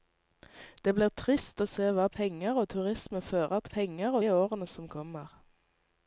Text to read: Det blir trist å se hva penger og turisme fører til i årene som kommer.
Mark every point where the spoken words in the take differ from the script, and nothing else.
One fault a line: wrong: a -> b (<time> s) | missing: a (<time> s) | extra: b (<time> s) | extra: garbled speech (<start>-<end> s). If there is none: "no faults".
wrong: til -> penger (3.7 s)